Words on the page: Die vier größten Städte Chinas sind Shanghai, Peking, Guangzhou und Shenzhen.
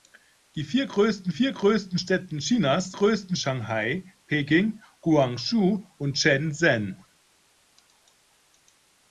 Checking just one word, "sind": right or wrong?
wrong